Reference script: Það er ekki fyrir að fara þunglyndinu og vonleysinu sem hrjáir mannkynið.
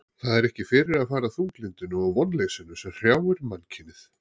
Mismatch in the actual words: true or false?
false